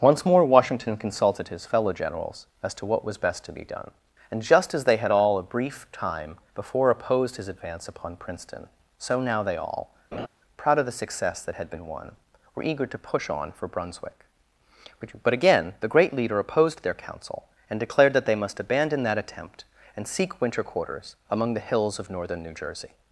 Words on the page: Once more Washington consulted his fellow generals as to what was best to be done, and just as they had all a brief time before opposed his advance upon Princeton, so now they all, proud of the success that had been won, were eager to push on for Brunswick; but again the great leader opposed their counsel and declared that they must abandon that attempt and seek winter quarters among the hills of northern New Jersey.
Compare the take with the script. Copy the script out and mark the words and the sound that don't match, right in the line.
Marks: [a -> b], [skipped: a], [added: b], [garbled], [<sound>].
Once more Washington consulted his fellow generals as to what was best to be done, and just as they had all a brief time before opposed his advance upon Princeton, so now they all, [laugh] proud of the success that had been won, were eager to push on for Brunswick; but again the great leader opposed their counsel and declared that they must abandon that attempt and seek winter quarters among the hills of northern New Jersey.